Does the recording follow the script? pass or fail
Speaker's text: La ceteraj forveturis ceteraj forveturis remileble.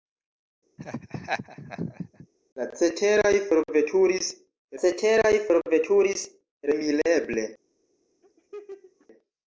pass